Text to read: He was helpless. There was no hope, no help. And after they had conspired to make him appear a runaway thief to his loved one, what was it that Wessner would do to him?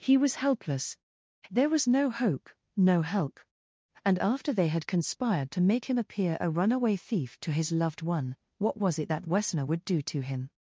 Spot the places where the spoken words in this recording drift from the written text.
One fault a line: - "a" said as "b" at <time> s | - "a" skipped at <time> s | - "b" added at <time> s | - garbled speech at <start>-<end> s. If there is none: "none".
none